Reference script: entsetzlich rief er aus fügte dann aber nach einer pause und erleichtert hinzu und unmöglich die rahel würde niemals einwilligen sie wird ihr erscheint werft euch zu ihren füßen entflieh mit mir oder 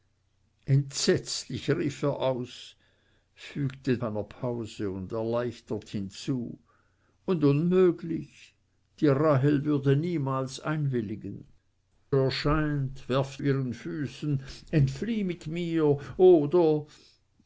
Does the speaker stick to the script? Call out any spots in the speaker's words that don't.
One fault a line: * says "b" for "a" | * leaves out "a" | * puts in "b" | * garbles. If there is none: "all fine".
* leaves out "dann aber nach"
* leaves out "sie wird ihr"
* leaves out "euch zu"